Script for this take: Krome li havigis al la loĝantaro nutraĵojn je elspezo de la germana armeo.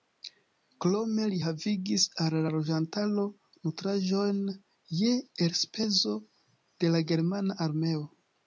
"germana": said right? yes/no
yes